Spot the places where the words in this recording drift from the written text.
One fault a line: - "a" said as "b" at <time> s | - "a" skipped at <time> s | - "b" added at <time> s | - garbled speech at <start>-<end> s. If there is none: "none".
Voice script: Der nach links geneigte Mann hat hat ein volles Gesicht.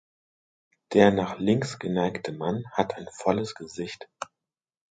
- "hat" skipped at 3.0 s